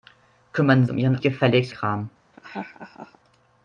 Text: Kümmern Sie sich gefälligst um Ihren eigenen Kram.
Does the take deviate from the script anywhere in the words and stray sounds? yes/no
yes